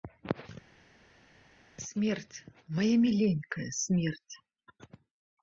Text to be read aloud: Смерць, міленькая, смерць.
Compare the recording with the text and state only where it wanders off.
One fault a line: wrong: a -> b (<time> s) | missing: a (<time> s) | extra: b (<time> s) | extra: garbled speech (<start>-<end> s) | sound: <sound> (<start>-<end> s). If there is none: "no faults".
extra: мая (2.8 s)